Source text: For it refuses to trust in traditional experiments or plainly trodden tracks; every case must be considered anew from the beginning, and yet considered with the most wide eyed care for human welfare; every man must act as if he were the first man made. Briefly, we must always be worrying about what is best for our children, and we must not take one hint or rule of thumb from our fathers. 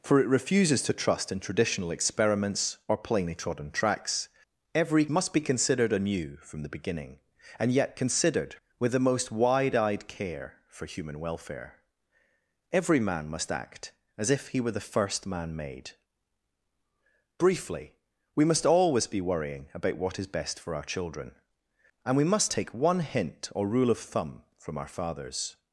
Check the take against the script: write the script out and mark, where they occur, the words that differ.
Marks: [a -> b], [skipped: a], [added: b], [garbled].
For it refuses to trust in traditional experiments or plainly trodden tracks; every [skipped: case] must be considered anew from the beginning, and yet considered with the most wide eyed care for human welfare; every man must act as if he were the first man made. Briefly, we must always be worrying about what is best for our children, and we must [skipped: not] take one hint or rule of thumb from our fathers.